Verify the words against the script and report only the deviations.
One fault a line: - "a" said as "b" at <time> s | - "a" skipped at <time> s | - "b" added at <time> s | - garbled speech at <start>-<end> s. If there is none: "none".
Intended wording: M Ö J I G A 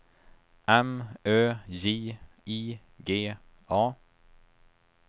none